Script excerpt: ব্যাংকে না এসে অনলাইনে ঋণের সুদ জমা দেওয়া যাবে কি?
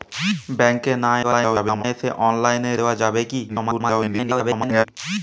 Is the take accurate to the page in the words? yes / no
no